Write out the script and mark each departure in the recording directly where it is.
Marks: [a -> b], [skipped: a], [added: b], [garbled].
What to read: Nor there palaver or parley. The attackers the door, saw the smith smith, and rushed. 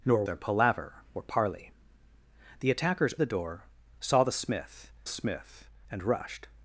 Nor there palaver or parley. The attackers the door, saw the smith smith, and rushed.